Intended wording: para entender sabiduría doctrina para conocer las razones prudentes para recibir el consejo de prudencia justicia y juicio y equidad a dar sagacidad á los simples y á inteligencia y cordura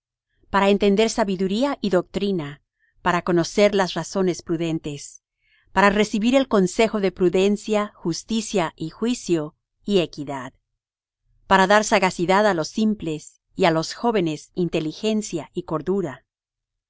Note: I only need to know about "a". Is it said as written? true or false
false